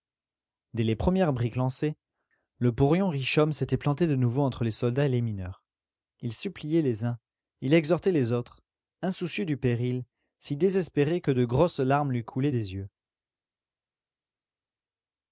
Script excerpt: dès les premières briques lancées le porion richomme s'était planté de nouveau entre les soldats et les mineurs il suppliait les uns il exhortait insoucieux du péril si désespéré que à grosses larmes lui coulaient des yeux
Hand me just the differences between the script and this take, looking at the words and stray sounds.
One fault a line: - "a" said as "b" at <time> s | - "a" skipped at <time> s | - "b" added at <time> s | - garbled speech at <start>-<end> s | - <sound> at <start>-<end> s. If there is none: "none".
- "les autres" added at 8.1 s
- "à" said as "de" at 11.3 s